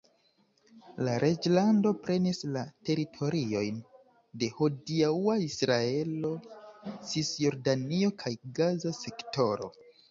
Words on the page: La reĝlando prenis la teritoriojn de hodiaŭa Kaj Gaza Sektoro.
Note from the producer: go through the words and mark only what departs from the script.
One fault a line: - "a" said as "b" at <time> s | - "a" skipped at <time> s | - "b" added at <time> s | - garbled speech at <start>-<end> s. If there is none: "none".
- "Israelo Cisjordanio" added at 5.5 s